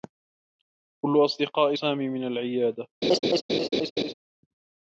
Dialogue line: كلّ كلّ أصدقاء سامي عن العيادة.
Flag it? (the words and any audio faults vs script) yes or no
yes